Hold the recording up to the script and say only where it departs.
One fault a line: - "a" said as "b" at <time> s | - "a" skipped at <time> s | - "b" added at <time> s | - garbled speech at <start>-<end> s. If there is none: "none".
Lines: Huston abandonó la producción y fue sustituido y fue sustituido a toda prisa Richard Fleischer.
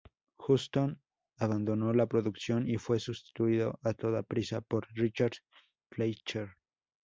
- "y fue sustituido" skipped at 3.8 s
- "por" added at 4.6 s